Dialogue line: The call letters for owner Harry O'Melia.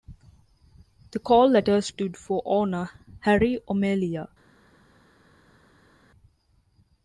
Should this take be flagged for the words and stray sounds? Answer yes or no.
yes